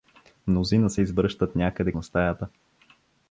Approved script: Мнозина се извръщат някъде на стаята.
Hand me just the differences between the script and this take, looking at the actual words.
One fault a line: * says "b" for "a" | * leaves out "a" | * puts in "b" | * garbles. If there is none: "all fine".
all fine